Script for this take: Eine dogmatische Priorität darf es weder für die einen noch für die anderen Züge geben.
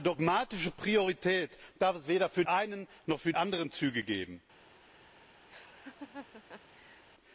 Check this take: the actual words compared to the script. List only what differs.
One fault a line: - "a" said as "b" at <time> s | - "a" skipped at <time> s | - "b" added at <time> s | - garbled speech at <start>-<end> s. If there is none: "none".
- "die" skipped at 2.4 s
- "die" skipped at 3.3 s